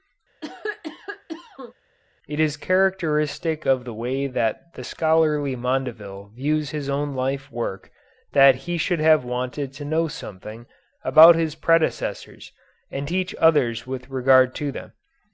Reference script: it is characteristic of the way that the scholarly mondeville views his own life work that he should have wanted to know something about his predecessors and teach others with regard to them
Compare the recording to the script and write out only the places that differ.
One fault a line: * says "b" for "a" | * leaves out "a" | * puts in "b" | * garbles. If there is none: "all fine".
all fine